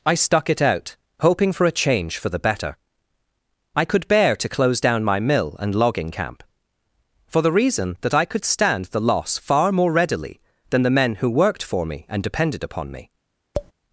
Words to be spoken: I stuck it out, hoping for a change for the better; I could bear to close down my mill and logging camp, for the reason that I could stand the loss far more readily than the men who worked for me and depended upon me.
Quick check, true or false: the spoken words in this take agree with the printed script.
true